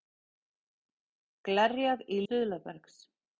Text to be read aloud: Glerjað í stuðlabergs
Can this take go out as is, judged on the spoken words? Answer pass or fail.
pass